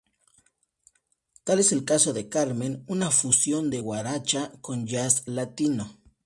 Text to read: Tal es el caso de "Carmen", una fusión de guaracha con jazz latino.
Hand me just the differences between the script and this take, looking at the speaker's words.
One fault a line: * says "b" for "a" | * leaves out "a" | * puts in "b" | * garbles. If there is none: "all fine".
all fine